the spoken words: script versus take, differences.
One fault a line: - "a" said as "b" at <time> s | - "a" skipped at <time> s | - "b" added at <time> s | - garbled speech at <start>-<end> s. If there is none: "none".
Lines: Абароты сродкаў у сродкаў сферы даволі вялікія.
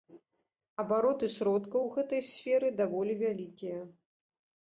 - "сродкаў" said as "гэтай" at 2.0 s